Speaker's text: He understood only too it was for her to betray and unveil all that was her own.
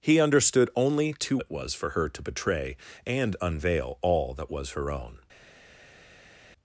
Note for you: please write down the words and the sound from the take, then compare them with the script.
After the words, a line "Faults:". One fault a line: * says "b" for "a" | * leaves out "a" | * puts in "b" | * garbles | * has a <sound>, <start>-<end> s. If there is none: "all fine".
He understood only too it was for her to betray and unveil all that was her own.
Faults:
all fine